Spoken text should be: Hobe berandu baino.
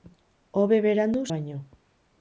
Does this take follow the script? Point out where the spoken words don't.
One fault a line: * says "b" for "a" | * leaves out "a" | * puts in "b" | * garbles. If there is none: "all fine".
all fine